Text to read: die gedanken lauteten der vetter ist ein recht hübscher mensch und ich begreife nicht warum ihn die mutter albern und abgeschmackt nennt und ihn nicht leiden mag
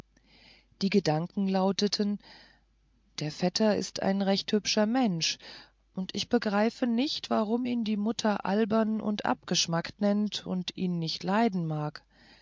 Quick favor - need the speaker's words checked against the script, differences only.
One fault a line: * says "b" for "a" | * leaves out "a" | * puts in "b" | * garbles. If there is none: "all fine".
all fine